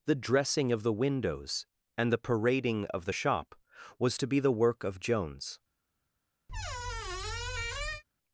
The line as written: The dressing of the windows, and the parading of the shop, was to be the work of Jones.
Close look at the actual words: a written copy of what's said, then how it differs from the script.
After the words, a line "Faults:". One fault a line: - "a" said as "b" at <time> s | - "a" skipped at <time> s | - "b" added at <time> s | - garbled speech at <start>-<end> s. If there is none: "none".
The dressing of the windows, and the parading of the shop, was to be the work of Jones.
Faults:
none